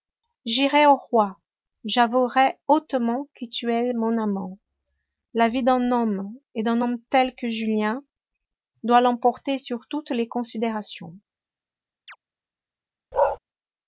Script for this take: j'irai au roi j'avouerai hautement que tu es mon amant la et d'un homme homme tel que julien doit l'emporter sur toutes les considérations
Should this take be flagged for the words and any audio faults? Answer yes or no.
yes